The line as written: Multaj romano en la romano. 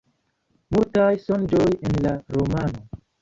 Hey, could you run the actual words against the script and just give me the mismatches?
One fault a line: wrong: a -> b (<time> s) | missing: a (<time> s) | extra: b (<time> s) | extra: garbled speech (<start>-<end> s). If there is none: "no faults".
wrong: romano -> sonĝoj (1.2 s)